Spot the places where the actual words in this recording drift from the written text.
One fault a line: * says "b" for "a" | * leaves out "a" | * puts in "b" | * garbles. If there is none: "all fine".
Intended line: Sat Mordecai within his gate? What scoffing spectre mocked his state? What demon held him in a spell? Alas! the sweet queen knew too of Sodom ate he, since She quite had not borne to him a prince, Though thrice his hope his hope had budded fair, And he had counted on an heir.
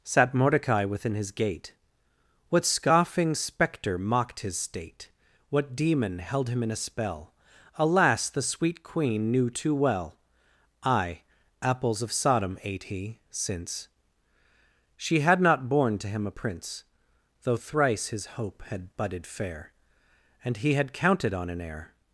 * puts in "well I Apples"
* leaves out "quite"
* leaves out "his hope"